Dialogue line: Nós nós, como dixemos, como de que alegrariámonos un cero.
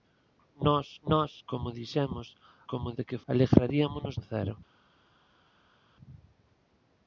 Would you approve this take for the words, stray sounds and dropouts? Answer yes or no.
yes